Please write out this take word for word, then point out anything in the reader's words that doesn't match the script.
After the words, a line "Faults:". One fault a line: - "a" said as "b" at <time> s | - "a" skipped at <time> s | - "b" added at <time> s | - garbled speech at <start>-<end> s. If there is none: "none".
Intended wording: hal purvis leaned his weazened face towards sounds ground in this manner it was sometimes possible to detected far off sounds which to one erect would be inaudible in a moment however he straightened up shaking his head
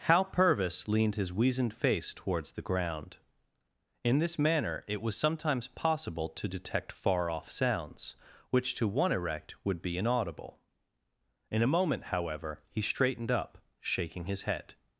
hal purvis leaned his weazened face towards the ground in this manner it was sometimes possible to detect far off sounds which to one erect would be inaudible in a moment however he straightened up shaking his head
Faults:
- "sounds" said as "the" at 2.5 s
- "detected" said as "detect" at 6.5 s